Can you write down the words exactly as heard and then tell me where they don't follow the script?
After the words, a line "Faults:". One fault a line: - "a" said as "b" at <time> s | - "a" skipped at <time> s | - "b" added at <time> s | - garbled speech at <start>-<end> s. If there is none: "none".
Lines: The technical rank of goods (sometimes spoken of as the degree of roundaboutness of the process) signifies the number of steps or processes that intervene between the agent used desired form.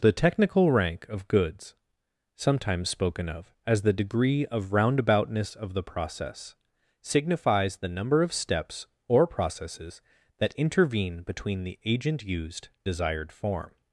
The technical rank of goods (sometimes spoken of as the degree of roundaboutness of the process) signifies the number of steps or processes that intervene between the agent used desired form.
Faults:
none